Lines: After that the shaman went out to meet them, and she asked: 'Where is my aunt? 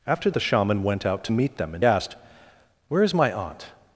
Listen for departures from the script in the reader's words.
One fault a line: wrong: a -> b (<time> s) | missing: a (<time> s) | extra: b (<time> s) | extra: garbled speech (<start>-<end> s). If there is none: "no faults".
missing: that (0.3 s)
missing: she (1.8 s)